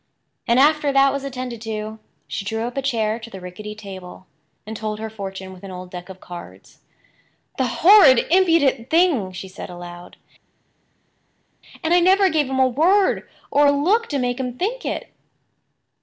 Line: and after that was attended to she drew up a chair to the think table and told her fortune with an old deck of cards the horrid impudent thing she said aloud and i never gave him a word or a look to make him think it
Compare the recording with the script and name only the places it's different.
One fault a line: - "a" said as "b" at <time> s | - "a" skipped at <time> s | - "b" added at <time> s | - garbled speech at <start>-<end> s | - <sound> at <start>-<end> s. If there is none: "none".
- "think" said as "rickety" at 3.4 s